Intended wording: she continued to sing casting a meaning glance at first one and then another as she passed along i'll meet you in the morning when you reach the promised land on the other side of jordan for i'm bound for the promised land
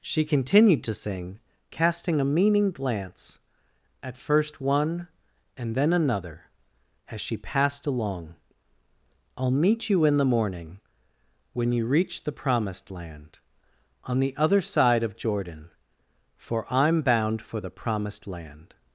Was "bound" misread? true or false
false